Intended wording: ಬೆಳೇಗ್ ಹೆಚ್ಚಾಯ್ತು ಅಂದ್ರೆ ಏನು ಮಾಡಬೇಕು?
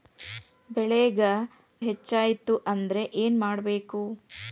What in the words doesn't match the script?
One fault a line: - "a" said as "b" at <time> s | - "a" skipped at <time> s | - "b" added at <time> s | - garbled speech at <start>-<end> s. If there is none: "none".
none